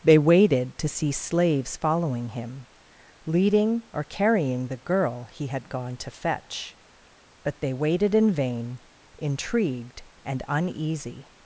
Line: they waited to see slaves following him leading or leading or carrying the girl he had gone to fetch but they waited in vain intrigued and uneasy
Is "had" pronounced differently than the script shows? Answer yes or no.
no